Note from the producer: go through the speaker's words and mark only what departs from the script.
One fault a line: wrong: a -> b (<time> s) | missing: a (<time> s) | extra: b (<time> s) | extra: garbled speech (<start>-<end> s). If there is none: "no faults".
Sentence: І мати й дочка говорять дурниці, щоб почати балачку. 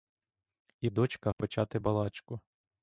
missing: мати (0.9 s)
missing: говорять дурниці щоб (1.3 s)